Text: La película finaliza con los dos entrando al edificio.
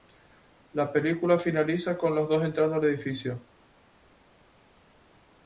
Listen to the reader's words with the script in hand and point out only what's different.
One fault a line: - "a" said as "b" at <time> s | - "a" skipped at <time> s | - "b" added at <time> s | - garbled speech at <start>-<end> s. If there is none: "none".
none